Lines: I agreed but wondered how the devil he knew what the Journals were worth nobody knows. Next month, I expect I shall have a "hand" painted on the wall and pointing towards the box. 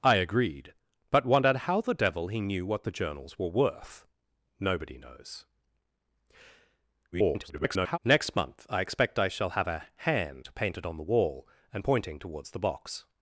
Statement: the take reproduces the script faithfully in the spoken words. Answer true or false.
false